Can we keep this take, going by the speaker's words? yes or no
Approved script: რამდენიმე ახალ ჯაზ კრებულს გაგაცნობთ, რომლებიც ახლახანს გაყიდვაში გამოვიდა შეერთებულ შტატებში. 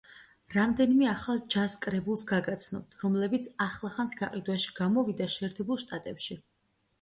yes